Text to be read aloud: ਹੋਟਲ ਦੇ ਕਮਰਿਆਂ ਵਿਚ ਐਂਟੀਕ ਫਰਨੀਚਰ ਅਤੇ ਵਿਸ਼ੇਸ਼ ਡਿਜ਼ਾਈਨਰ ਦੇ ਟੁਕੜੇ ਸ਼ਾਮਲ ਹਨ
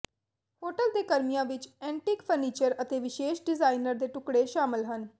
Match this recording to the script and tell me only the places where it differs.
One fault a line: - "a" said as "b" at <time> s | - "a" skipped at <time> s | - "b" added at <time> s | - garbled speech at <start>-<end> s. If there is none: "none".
none